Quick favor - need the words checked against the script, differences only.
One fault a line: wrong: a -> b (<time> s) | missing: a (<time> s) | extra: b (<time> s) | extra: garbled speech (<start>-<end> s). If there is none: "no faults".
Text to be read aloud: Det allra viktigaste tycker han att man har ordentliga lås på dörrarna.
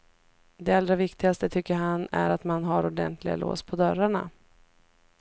extra: är (2.1 s)